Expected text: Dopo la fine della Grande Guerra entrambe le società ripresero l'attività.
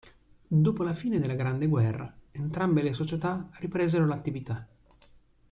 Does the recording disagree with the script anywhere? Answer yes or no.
no